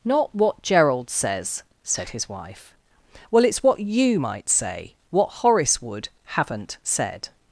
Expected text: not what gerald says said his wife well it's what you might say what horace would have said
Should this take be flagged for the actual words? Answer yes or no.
yes